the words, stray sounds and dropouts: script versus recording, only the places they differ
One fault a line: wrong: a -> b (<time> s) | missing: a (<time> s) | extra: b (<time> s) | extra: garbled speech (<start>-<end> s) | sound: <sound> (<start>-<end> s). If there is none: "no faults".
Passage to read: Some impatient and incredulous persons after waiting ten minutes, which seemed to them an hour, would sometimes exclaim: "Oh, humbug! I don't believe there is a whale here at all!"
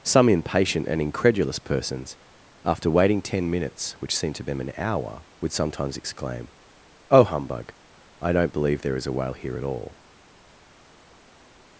no faults